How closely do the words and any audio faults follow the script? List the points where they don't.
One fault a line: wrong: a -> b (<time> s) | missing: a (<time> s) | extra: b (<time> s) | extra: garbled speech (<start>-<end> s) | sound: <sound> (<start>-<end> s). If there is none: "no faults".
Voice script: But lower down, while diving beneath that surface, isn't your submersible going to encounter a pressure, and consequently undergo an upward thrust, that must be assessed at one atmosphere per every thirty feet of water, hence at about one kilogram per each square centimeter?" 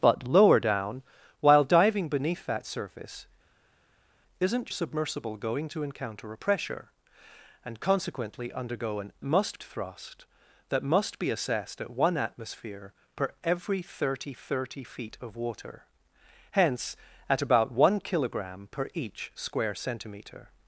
missing: your (4.7 s)
wrong: upward -> must (9.2 s)
extra: thirty (14.3 s)